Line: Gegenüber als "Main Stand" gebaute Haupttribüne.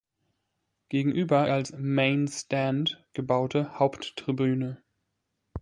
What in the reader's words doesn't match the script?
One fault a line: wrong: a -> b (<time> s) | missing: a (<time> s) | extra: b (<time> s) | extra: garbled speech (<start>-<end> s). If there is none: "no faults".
no faults